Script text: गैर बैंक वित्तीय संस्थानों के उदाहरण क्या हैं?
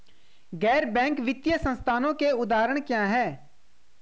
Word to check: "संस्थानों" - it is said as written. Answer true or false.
true